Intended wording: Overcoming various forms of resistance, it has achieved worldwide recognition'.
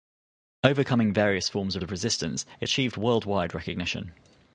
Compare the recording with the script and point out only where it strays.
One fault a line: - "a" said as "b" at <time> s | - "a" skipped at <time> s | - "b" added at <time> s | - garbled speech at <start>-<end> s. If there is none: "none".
- "of" added at 1.8 s
- "has" skipped at 2.7 s